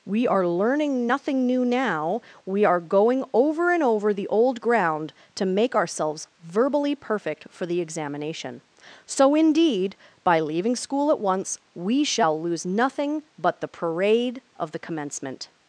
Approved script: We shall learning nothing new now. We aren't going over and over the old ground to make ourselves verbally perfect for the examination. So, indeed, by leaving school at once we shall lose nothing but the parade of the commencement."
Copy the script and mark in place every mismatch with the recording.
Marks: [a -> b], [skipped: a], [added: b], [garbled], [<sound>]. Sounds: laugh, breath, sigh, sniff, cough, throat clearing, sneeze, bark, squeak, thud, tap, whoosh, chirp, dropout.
We [shall -> are] learning nothing new now. We [aren't -> are] going over and over the old ground to make ourselves verbally perfect for the examination. So, indeed, by leaving school at once we shall lose nothing but the parade of the commencement."